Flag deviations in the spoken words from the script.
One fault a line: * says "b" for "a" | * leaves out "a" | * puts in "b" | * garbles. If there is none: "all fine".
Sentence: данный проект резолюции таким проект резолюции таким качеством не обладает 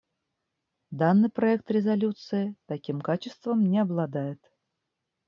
* leaves out "проект резолюции таким"